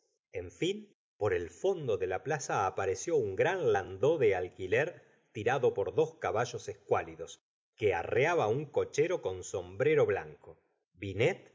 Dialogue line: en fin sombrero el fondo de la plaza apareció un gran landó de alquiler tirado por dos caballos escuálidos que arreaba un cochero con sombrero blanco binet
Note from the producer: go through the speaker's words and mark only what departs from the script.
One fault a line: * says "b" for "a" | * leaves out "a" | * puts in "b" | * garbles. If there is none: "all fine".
* says "por" for "sombrero"